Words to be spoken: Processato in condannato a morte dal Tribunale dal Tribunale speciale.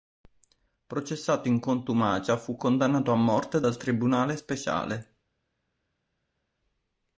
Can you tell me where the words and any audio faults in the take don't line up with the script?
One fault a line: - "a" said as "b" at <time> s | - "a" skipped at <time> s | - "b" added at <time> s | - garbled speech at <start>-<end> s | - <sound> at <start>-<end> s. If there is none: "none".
- "contumacia fu" added at 1.6 s
- "dal Tribunale" skipped at 4.4 s